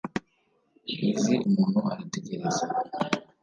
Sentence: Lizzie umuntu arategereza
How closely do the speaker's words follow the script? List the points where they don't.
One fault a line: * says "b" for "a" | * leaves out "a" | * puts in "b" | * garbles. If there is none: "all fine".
all fine